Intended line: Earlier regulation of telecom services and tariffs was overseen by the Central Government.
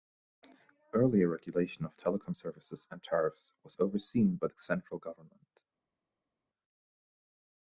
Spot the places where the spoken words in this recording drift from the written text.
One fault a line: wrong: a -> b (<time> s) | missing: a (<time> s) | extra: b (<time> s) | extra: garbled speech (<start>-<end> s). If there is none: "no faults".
no faults